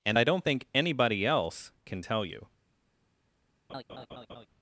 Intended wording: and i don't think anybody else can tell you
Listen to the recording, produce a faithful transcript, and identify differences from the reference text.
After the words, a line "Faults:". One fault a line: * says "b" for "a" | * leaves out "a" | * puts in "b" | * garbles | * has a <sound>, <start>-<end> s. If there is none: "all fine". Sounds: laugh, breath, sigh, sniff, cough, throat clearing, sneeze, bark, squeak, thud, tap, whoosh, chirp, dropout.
and i don't think anybody else can tell you
Faults:
* has a laugh, 3.7-4.5 s